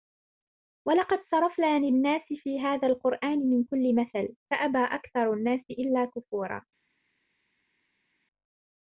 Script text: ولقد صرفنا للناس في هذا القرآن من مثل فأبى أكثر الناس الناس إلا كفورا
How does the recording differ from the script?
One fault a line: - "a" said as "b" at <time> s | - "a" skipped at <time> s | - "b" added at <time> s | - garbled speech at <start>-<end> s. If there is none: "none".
- "كل" added at 3.6 s
- "الناس" skipped at 5.6 s